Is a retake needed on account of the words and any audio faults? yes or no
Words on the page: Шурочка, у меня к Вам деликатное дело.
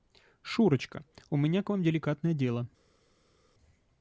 no